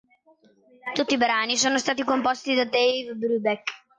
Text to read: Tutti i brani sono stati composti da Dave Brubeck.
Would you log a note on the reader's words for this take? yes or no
no